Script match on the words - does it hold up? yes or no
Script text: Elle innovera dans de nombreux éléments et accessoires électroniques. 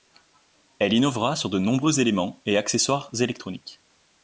no